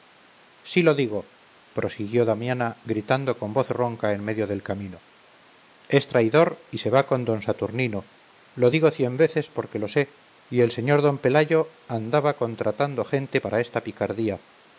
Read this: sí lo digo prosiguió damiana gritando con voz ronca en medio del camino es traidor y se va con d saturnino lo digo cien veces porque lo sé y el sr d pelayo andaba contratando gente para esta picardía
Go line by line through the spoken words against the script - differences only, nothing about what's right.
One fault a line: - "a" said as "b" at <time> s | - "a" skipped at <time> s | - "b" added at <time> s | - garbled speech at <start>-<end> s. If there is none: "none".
none